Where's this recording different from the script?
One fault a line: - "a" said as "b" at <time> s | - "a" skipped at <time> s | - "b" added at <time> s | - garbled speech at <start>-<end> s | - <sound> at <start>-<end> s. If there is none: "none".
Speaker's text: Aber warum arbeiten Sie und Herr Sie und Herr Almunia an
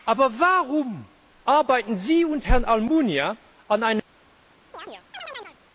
- "Sie und Herr" skipped at 2.7 s
- chirp at 4.7-5.6 s